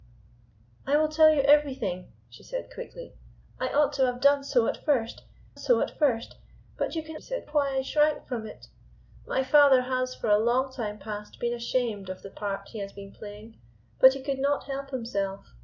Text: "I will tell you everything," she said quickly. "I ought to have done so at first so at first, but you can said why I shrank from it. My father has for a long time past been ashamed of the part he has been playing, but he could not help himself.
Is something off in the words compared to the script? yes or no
no